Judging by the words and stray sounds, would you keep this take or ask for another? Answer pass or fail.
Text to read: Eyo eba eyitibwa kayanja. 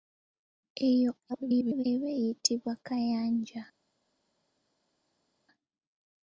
fail